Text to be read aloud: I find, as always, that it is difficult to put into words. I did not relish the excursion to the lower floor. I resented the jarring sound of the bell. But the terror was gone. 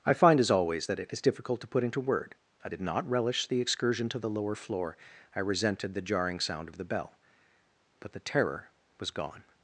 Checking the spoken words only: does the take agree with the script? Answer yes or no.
no